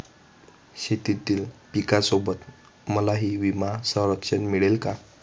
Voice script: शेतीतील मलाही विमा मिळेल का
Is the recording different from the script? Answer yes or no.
yes